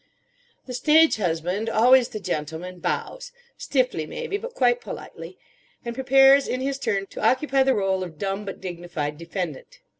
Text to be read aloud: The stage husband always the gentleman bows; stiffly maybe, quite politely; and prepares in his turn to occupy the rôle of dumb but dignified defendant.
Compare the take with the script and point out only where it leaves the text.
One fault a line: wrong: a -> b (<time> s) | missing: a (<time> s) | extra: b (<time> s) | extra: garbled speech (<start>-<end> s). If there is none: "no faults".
extra: but (4.4 s)